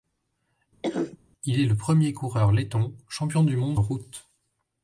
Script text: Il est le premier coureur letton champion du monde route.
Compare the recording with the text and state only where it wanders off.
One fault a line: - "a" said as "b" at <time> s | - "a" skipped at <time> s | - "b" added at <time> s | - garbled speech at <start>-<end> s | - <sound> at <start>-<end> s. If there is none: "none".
- cough at 0.8-1.2 s